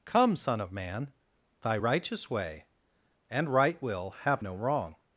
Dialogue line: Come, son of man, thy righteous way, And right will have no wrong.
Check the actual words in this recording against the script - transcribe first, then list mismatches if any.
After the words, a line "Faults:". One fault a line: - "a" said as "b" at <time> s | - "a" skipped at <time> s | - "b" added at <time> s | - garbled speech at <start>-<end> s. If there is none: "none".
Come, son of man, thy righteous way, And right will have no wrong.
Faults:
none